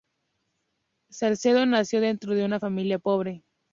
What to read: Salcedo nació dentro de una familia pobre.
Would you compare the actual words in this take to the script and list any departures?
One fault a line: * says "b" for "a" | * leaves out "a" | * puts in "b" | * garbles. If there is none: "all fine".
all fine